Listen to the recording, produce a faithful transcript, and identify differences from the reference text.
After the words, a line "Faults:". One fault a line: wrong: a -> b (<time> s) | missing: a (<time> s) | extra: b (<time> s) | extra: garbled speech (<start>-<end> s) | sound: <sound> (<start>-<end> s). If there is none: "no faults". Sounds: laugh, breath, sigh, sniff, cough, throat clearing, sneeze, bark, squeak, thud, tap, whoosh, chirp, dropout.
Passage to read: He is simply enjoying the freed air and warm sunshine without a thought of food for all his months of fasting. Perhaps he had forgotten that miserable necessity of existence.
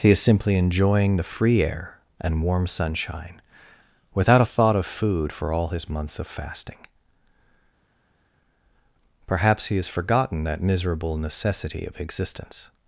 He is simply enjoying the free air and warm sunshine without a thought of food for all his months of fasting. Perhaps he has forgotten that miserable necessity of existence.
Faults:
wrong: freed -> free (1.3 s)
wrong: had -> has (9.8 s)